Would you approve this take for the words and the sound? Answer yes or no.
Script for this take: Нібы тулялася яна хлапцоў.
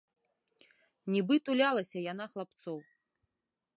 yes